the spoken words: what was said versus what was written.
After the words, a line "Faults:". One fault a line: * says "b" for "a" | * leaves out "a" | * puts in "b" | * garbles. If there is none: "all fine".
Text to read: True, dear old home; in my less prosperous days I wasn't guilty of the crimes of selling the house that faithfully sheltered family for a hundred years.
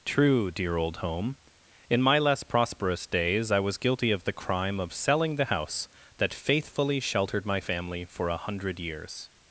True, dear old home; in my less prosperous days I was guilty of the crime of selling the house that faithfully sheltered my family for a hundred years.
Faults:
* says "was" for "wasn't"
* says "crime" for "crimes"
* puts in "my"